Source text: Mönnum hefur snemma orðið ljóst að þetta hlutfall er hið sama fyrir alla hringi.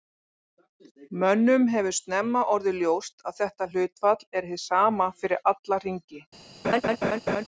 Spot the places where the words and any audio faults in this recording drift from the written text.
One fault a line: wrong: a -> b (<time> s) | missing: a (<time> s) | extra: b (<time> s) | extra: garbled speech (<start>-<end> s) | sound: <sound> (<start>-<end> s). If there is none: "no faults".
sound: laugh (6.6-7.4 s)